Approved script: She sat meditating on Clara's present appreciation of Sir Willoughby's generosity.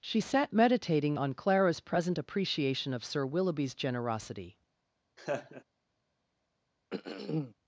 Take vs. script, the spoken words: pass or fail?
pass